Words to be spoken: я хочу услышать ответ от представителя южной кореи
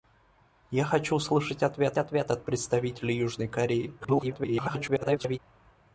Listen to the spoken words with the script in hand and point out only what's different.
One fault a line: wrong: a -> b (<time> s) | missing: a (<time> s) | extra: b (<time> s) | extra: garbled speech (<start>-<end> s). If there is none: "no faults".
extra: ответ (2.0 s)
extra: garbled speech (4.0-5.4 s)